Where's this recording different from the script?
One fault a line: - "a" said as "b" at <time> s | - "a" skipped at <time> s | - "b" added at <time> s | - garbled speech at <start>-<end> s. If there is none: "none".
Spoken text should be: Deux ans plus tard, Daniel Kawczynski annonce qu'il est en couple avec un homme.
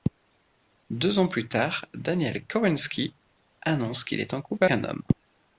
- "avec" skipped at 4.7 s